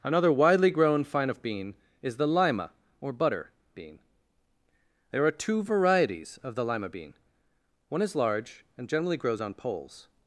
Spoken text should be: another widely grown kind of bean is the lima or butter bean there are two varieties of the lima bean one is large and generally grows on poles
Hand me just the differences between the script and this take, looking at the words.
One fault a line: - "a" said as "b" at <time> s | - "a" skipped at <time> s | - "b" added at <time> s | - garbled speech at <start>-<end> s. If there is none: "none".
- "kind" said as "fine" at 1.0 s